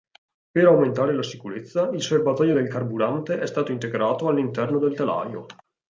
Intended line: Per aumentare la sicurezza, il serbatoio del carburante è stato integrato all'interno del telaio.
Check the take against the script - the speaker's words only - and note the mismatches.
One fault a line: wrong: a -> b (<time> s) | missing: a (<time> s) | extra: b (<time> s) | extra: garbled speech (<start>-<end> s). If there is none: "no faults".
no faults